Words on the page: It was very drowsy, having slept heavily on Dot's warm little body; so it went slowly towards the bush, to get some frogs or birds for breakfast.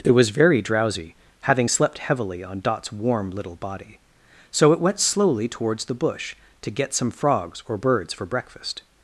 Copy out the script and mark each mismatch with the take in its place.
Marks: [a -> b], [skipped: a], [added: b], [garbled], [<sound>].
It was very drowsy, having slept heavily on Dot's warm little body; so it went slowly towards the bush, to get some frogs or birds for breakfast.